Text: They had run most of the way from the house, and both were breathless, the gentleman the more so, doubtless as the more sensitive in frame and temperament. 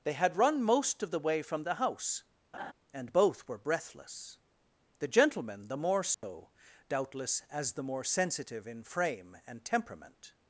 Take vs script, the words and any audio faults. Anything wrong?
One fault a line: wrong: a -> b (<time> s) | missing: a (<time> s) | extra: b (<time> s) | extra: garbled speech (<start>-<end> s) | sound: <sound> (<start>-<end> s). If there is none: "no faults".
sound: laugh (2.5-2.7 s)
sound: dropout (6.1-6.2 s)